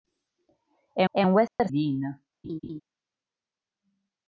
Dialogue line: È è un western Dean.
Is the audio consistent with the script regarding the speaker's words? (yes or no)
yes